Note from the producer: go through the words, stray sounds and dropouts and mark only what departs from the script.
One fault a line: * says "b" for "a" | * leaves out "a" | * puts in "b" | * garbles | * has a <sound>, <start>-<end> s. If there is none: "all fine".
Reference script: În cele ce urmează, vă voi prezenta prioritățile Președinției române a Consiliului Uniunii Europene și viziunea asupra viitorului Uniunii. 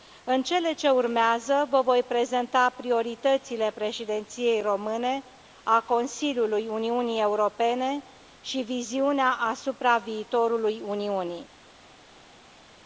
all fine